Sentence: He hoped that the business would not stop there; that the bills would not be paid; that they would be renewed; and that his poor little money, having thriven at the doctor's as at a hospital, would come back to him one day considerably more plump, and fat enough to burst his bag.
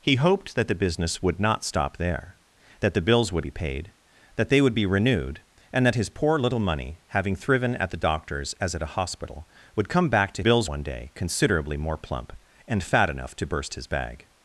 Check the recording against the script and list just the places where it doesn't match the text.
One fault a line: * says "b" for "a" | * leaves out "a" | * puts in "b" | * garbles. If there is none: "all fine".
* leaves out "not"
* says "bills" for "him"